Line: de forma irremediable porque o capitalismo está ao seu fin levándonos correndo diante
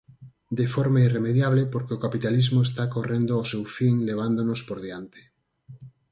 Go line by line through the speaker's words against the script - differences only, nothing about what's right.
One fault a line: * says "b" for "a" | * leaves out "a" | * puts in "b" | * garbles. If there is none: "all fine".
* puts in "correndo"
* says "por" for "correndo"